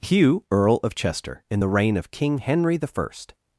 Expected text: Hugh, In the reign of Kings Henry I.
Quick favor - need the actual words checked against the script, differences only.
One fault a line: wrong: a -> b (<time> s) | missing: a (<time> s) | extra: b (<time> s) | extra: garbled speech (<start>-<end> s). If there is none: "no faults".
extra: Earl of Chester (0.5 s)
wrong: Kings -> King (2.1 s)